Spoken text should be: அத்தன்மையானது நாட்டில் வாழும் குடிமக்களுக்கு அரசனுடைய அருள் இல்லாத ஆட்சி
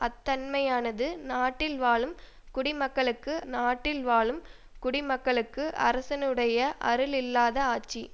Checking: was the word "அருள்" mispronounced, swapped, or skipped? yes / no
no